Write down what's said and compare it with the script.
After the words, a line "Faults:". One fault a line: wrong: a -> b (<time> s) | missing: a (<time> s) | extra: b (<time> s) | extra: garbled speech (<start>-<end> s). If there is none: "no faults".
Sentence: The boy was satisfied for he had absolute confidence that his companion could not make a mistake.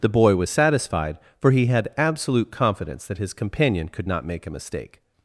The boy was satisfied for he had absolute confidence that his companion could not make a mistake.
Faults:
no faults